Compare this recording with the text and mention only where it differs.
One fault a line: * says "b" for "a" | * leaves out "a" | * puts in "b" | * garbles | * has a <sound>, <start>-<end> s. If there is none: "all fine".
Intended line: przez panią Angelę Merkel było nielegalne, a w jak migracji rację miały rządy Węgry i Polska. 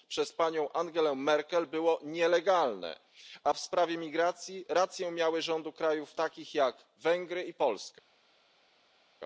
* says "sprawie" for "jak"
* puts in "krajów takich jak"